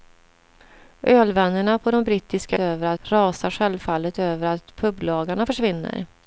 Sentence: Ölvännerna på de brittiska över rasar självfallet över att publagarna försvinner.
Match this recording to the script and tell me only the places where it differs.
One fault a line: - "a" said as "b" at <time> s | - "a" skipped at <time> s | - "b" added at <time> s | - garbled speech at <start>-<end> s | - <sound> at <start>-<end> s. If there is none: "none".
none